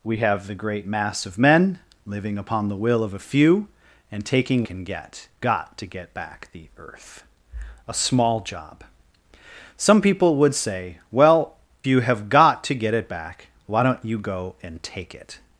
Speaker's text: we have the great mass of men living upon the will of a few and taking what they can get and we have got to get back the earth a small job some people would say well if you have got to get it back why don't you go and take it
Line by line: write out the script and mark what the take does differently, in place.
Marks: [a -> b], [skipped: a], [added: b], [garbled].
we have the great mass of men living upon the will of a few and taking [skipped: what they] can get [skipped: and we have] got to get back the earth a small job some people would say well [skipped: if] you have got to get it back why don't you go and take it